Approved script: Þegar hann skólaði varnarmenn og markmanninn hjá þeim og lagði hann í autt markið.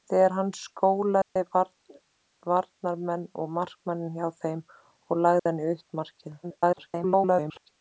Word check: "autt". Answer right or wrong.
right